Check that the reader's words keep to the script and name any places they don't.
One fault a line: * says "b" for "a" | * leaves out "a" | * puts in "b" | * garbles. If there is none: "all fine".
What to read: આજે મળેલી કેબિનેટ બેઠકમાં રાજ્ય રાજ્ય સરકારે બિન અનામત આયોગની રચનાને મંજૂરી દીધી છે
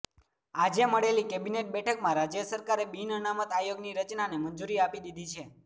* leaves out "રાજ્ય"
* puts in "આપી"